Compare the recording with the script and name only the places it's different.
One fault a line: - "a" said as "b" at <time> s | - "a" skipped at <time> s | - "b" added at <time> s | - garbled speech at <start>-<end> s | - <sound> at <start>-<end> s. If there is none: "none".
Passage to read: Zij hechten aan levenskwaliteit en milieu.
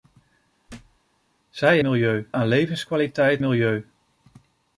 - thud at 0.7-1.0 s
- "hechten" said as "milieu" at 1.8 s
- "en" skipped at 3.4 s